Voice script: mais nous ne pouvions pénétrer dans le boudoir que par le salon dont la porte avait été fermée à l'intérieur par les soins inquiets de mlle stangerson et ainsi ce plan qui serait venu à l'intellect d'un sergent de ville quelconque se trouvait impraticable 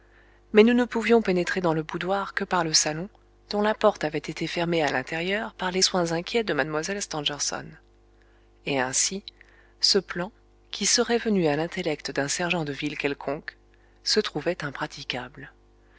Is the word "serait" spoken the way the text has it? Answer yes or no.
yes